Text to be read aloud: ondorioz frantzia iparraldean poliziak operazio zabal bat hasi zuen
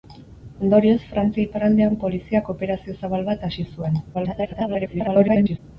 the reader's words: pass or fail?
fail